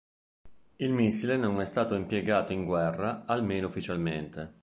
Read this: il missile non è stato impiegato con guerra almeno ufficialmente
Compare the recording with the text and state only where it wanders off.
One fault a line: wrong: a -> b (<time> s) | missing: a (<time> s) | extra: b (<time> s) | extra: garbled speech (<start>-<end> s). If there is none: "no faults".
wrong: con -> in (2.5 s)